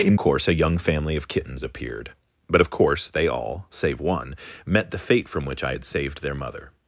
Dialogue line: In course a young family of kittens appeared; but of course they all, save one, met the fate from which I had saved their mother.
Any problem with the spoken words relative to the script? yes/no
no